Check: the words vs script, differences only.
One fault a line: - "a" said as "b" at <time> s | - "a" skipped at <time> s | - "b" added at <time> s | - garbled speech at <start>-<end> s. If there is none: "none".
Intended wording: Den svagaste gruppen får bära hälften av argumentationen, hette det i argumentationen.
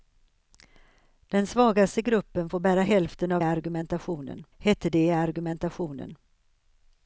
none